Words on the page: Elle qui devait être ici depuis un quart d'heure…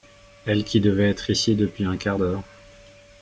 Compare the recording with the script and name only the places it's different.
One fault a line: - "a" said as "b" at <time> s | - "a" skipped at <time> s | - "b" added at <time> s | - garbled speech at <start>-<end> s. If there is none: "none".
none